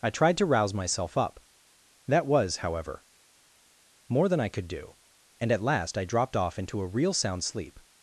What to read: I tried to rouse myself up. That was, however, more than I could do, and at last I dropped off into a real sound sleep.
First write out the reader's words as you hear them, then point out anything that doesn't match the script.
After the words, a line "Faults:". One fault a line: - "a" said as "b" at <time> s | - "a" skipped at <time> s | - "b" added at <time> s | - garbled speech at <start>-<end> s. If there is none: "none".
I tried to rouse myself up. That was, however, more than I could do, and at last I dropped off into a real sound sleep.
Faults:
none